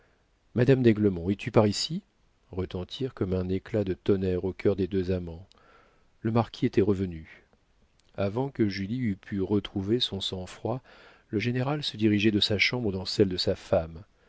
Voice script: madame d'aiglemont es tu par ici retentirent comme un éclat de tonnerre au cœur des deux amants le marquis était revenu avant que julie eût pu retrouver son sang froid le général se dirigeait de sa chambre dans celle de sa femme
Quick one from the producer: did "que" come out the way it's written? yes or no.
yes